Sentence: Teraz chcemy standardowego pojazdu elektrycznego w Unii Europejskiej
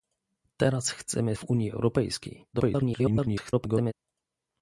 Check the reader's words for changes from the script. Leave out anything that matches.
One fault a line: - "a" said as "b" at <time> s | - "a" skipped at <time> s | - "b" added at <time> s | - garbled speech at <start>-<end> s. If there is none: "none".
- "standardowego pojazdu elektrycznego" skipped at 1.4 s
- garbled speech at 2.5-3.9 s